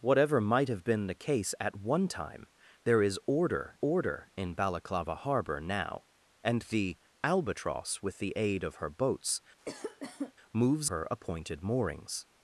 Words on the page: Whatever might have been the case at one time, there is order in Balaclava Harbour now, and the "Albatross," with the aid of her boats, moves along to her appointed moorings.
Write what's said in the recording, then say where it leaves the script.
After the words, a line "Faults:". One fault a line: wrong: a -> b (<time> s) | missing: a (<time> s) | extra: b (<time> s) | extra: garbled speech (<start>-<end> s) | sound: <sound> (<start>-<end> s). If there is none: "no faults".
Whatever might have been the case at one time, there is order order in Balaclava Harbour now, and the "Albatross," with the aid of her boats, moves her appointed moorings.
Faults:
extra: order (3.8 s)
sound: cough (9.6-10.3 s)
missing: along to (10.9 s)